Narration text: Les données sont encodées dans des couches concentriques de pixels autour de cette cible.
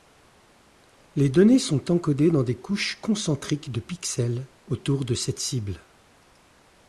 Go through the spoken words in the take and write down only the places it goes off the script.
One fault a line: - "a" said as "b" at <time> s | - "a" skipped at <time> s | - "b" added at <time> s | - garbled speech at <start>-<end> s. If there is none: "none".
none